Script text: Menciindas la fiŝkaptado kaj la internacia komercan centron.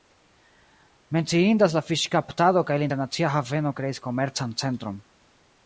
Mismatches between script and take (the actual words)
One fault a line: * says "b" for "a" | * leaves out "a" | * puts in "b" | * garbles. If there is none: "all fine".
* puts in "haveno kreis"